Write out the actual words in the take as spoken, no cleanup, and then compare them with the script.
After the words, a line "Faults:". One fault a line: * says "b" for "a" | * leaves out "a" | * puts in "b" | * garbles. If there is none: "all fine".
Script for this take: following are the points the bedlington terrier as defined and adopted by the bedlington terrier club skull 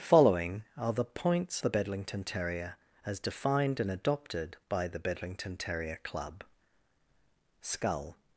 following are the points the bedlington terrier as defined and adopted by the bedlington terrier club skull
Faults:
all fine